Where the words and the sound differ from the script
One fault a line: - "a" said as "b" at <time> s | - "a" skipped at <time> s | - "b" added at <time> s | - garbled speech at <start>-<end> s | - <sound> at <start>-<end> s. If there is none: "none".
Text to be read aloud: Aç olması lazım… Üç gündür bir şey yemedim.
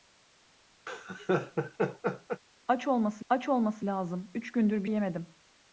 - laugh at 0.9-2.4 s
- "aç olması" added at 3.3 s
- "şey" skipped at 4.9 s